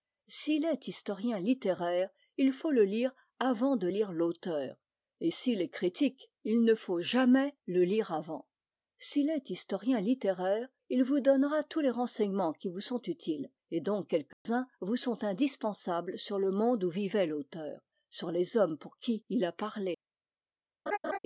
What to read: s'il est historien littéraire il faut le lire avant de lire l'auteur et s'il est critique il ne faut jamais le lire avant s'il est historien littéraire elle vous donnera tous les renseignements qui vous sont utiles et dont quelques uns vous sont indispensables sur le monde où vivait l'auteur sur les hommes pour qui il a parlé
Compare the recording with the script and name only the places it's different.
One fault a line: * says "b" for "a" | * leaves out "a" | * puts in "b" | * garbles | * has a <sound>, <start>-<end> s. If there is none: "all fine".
* says "il" for "elle"
* has a dropout, 14.3-14.5 s
* has a laugh, 20.9-21.2 s